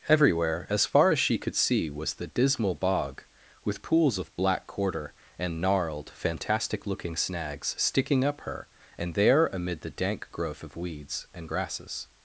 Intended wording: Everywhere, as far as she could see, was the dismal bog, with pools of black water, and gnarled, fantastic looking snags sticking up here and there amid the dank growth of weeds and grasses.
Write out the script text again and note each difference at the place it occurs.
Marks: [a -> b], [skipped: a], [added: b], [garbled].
Everywhere, as far as she could see, was the dismal bog, with pools of black [water, -> quarter] and gnarled, fantastic looking snags sticking up [here -> her] and there amid the dank growth of weeds and grasses.